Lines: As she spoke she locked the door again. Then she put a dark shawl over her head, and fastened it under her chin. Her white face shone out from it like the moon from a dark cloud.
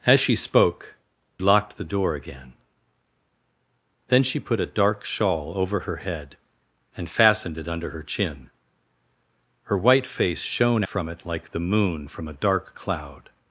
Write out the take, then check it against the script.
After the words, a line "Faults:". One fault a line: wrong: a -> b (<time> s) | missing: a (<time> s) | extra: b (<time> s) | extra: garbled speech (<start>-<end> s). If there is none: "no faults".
As she spoke locked the door again. Then she put a dark shawl over her head, and fastened it under her chin. Her white face shone from it like the moon from a dark cloud.
Faults:
missing: she (0.9 s)
missing: out (10.8 s)